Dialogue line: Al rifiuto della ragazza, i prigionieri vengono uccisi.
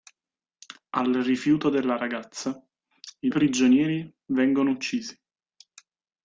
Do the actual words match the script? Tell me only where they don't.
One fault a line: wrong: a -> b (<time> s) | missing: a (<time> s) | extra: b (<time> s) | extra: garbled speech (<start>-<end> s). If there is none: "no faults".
no faults